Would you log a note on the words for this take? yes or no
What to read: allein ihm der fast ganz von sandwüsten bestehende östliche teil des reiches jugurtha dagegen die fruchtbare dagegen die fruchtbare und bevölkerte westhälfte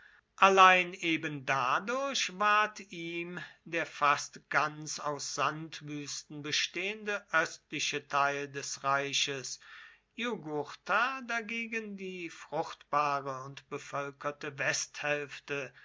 yes